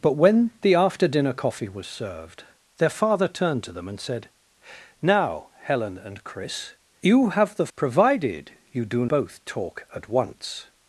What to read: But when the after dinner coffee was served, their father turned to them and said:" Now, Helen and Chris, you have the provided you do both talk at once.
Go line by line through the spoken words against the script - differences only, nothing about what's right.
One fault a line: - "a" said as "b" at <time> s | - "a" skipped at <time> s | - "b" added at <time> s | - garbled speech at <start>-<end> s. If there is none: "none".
none